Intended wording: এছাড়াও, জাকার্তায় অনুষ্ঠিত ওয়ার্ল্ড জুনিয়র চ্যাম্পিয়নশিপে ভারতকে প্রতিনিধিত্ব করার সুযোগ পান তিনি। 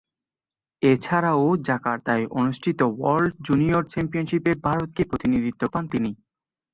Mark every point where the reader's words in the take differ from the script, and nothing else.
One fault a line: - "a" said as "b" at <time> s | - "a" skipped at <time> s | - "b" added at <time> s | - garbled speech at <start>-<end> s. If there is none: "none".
- "করার সুযোগ" skipped at 5.6 s